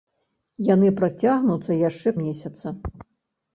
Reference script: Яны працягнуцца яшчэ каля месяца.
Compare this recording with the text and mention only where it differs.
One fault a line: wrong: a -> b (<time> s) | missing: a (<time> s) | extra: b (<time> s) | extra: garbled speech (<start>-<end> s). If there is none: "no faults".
missing: каля (2.1 s)